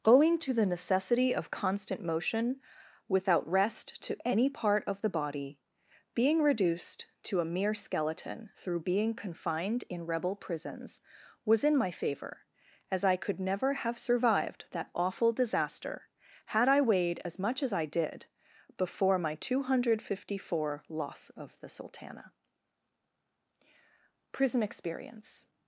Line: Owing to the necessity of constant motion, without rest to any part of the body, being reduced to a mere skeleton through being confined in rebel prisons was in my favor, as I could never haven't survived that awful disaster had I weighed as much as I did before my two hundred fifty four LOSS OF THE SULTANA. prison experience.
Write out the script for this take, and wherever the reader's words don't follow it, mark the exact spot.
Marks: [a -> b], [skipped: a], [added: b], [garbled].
Owing to the necessity of constant motion, without rest to any part of the body, being reduced to a mere skeleton through being confined in rebel prisons was in my favor, as I could never [haven't -> have] survived that awful disaster had I weighed as much as I did before my two hundred fifty four LOSS OF THE SULTANA. prison experience.